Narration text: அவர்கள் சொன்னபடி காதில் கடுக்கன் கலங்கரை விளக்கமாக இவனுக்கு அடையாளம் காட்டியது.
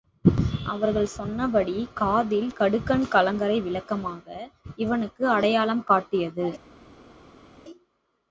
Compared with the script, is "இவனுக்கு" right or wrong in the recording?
right